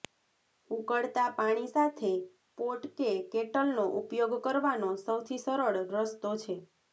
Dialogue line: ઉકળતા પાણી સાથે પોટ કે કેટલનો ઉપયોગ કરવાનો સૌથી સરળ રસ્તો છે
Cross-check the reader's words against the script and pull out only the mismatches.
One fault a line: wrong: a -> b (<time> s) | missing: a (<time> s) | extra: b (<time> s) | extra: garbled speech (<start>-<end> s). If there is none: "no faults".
no faults